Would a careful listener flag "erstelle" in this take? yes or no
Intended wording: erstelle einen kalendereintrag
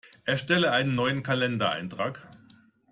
no